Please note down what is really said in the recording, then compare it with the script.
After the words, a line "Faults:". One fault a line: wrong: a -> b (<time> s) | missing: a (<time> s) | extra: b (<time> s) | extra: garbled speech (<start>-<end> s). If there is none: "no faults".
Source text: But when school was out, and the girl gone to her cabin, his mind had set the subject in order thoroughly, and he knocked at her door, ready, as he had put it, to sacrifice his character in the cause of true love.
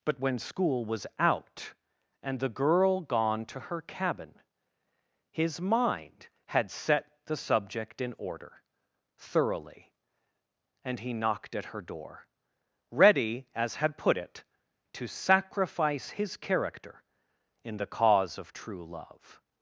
But when school was out, and the girl gone to her cabin, his mind had set the subject in order thoroughly, and he knocked at her door, ready, as had put it, to sacrifice his character in the cause of true love.
Faults:
missing: he (13.8 s)